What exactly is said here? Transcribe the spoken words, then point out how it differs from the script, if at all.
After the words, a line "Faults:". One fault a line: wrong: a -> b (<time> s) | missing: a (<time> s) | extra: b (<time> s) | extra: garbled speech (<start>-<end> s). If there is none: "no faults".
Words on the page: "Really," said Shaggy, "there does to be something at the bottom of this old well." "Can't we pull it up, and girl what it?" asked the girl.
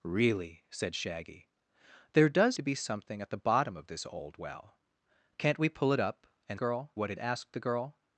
"Really," said Shaggy, "there does to be something at the bottom of this old well." "Can't we pull it up, and girl what it?" asked the girl.
Faults:
no faults